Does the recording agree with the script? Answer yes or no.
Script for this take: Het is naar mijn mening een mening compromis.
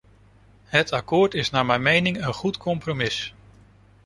no